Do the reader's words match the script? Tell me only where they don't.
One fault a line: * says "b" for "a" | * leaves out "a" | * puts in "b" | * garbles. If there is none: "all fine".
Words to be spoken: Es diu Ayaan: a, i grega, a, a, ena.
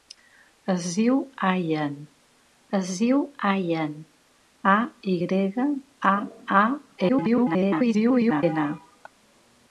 * puts in "es diu Ayaan"
* garbles